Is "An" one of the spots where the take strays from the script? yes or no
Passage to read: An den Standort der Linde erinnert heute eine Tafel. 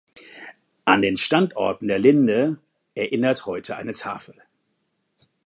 no